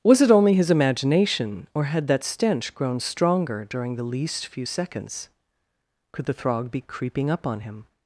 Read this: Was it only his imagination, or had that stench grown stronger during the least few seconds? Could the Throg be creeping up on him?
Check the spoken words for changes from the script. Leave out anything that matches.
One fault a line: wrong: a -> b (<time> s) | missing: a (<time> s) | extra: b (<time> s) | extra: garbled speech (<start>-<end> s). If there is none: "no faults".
no faults